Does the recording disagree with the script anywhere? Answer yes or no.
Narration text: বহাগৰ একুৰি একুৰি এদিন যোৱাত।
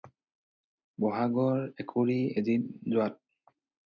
yes